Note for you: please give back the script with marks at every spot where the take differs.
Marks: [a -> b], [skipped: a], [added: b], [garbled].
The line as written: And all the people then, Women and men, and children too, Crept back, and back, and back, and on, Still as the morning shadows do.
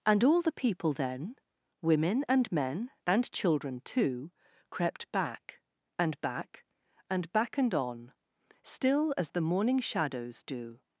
And all the people then, Women and men, and children too, Crept back, and back, and back, and on, Still as the morning shadows do.